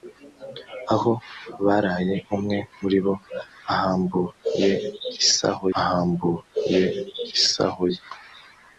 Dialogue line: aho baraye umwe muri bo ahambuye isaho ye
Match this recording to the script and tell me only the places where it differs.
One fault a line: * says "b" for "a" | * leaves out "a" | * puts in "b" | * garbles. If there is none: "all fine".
* puts in "ahambuye isaho"